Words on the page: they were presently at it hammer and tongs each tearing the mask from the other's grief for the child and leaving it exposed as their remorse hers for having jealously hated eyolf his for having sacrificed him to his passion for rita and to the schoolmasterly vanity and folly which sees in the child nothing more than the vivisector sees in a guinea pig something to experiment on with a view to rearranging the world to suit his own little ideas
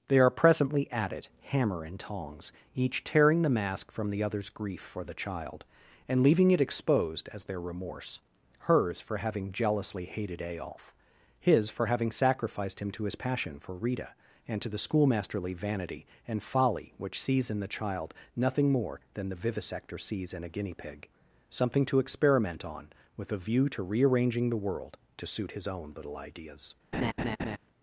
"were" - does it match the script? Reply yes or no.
no